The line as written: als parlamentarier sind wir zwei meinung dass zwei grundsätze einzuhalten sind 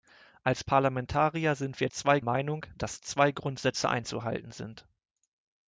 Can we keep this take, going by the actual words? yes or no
yes